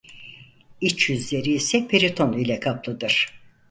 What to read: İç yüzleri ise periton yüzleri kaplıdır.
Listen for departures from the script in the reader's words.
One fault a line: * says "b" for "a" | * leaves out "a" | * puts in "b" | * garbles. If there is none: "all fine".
* says "ile" for "yüzleri"